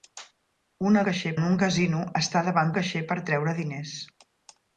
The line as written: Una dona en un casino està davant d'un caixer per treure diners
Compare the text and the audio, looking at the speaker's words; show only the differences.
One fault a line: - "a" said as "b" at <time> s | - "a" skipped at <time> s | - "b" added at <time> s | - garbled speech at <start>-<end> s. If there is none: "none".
- "dona" said as "caixer" at 1.1 s
- "d'un" skipped at 2.7 s